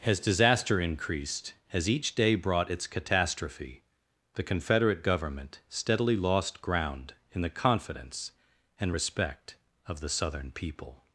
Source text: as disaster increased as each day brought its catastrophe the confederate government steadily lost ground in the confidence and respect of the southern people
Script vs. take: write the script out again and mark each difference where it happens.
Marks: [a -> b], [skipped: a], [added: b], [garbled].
as disaster increased as each day brought its catastrophe the confederate government steadily lost ground in the confidence and respect of the southern people